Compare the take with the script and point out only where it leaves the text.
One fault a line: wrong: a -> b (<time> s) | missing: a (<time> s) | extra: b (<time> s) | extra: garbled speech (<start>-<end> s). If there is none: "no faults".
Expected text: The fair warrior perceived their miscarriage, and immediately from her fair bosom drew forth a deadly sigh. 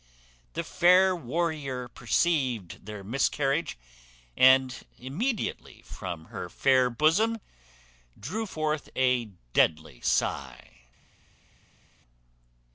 no faults